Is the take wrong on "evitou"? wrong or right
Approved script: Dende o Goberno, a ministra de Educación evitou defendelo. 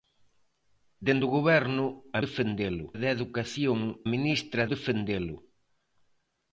wrong